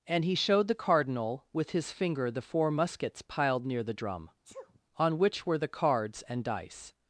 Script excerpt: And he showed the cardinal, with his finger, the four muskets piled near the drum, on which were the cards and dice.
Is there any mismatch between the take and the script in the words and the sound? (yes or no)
yes